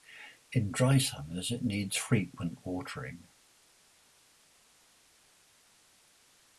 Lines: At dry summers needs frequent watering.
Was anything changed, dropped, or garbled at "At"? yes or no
yes